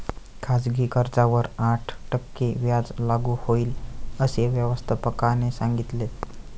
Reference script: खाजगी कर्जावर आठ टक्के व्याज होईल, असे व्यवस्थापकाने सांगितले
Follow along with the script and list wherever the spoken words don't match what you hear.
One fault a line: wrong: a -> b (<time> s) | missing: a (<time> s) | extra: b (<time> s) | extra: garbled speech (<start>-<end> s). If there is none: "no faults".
extra: लागू (3.0 s)